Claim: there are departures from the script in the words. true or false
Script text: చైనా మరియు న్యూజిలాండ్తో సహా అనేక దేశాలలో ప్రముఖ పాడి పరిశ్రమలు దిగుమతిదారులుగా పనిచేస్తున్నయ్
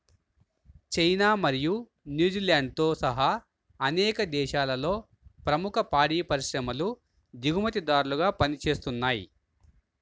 false